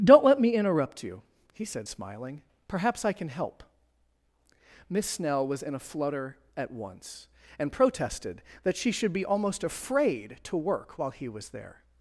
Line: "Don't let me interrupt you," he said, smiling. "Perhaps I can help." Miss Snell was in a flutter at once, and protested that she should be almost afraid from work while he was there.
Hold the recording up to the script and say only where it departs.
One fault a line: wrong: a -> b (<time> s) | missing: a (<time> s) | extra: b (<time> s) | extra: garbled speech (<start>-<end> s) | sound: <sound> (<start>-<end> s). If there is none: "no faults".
wrong: from -> to (10.4 s)